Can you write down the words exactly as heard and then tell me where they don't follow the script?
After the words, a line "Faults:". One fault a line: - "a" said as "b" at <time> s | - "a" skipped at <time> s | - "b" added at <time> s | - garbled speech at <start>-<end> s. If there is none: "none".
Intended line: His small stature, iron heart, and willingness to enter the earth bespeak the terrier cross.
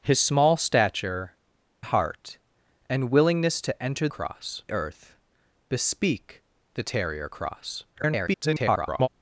His small stature, heart, and willingness to enter cross earth bespeak the terrier cross. [garbled]
Faults:
- "iron" skipped at 1.3 s
- "the" said as "cross" at 4.1 s
- garbled speech at 7.9-9.1 s